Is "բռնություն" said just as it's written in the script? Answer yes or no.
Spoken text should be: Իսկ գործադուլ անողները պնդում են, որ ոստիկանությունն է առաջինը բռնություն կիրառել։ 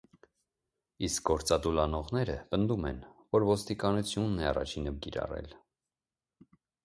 no